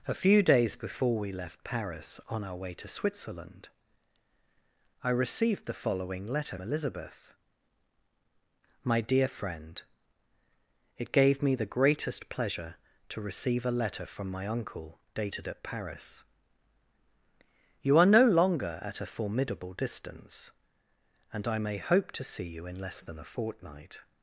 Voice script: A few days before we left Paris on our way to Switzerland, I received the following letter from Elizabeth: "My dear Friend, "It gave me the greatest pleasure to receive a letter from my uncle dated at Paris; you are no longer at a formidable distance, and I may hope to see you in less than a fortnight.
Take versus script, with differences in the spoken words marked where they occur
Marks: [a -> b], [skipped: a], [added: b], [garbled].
A few days before we left Paris on our way to Switzerland, I received the following letter [skipped: from] Elizabeth: "My dear Friend, "It gave me the greatest pleasure to receive a letter from my uncle dated at Paris; you are no longer at a formidable distance, and I may hope to see you in less than a fortnight.